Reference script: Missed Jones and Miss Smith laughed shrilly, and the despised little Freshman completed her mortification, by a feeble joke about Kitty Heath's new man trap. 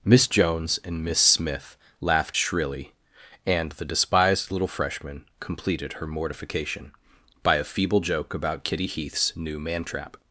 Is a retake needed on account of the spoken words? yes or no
yes